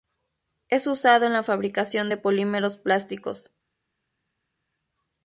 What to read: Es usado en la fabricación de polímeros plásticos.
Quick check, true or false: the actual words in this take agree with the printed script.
true